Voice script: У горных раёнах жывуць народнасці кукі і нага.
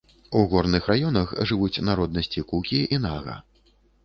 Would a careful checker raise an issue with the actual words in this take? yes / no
no